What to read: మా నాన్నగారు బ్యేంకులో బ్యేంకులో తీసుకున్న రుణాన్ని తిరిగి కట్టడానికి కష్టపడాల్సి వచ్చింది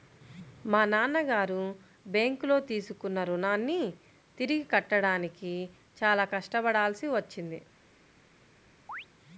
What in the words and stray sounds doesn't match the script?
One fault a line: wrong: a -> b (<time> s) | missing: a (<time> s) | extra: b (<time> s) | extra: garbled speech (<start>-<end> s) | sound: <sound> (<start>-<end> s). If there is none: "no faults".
missing: బ్యేంకులో (2.6 s)
extra: చాలా (6.0 s)
sound: chirp (8.9-9.1 s)